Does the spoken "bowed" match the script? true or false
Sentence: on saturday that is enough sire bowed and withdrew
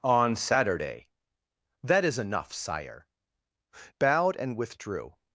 true